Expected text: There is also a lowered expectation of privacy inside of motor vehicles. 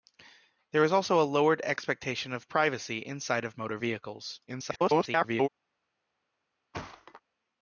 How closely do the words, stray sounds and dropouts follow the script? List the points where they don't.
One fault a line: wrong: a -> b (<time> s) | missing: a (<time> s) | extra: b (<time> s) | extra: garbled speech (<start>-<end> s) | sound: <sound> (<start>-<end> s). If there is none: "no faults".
extra: garbled speech (4.5-5.5 s)
sound: thud (6.7-7.2 s)